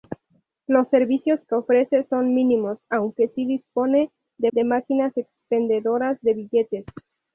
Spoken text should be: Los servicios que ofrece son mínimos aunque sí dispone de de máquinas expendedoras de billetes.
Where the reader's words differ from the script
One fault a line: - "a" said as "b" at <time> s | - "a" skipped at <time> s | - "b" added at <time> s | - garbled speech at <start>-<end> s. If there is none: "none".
none